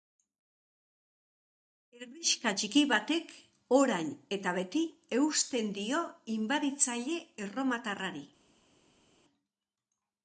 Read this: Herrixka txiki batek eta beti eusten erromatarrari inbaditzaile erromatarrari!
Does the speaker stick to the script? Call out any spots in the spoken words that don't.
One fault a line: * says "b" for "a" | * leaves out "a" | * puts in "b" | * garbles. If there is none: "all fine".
* puts in "orain"
* says "dio" for "erromatarrari"